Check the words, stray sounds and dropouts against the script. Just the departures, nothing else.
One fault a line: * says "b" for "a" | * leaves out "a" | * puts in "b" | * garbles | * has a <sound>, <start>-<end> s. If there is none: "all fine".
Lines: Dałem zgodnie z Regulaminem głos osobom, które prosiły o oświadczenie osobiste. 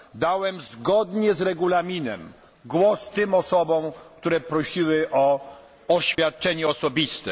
* puts in "tym"
* has a dropout, 6.2-6.2 s